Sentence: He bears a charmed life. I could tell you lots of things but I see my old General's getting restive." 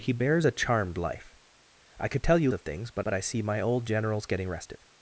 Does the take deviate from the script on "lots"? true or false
true